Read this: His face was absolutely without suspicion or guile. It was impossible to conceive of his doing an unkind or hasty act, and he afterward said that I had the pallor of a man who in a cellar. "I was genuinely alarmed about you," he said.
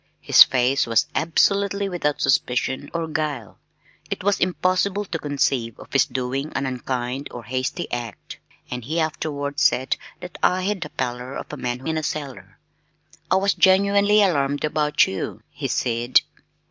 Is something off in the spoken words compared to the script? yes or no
no